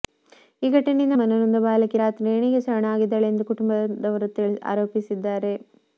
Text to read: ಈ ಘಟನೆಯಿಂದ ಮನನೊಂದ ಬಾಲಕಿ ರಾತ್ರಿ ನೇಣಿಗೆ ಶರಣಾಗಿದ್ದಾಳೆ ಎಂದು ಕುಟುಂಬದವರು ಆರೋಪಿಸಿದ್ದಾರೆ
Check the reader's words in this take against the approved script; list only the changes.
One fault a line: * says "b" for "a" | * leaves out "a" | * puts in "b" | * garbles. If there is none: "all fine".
all fine